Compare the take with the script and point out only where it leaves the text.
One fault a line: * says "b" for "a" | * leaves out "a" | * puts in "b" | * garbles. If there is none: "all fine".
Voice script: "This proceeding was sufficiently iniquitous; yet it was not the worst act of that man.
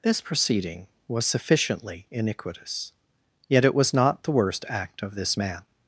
* says "this" for "that"